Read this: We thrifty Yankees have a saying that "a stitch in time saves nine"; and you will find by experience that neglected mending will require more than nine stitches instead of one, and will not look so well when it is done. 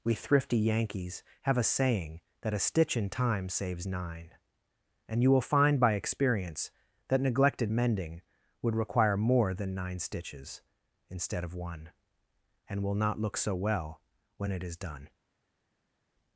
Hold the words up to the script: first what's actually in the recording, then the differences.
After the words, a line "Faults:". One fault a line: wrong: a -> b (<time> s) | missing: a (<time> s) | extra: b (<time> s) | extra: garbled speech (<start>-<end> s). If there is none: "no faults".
We thrifty Yankees have a saying that "a stitch in time saves nine"; and you will find by experience that neglected mending would require more than nine stitches instead of one, and will not look so well when it is done.
Faults:
wrong: will -> would (8.6 s)